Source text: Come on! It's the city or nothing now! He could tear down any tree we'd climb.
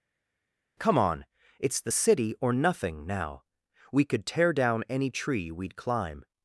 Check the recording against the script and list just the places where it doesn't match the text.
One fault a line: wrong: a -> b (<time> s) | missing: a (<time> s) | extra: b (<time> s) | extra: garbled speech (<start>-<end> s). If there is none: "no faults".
wrong: He -> We (3.9 s)